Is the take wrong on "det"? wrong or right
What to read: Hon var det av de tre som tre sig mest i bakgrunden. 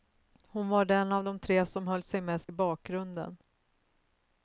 wrong